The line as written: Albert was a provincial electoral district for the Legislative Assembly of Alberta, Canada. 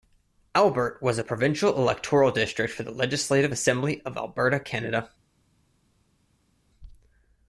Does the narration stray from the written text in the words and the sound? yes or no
no